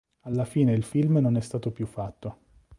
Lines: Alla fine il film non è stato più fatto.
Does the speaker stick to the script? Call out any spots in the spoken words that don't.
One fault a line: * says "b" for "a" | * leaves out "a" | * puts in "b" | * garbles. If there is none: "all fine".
all fine